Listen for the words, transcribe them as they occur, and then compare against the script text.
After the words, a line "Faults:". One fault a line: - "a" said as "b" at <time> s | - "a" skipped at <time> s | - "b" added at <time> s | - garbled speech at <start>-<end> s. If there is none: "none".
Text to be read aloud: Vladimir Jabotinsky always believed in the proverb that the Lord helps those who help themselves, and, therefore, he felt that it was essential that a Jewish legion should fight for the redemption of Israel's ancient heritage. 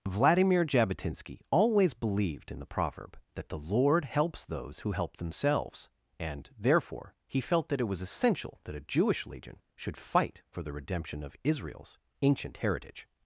Vladimir Jabotinsky always believed in the proverb that the Lord helps those who help themselves, and, therefore, he felt that it was essential that a Jewish legion should fight for the redemption of Israel's ancient heritage.
Faults:
none